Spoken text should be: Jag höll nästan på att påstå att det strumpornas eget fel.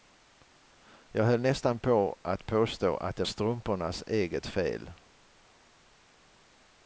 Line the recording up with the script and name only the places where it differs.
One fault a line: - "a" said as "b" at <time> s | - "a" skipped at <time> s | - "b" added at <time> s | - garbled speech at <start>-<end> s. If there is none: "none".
none